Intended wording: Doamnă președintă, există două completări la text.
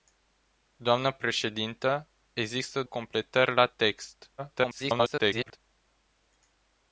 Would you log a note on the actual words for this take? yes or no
yes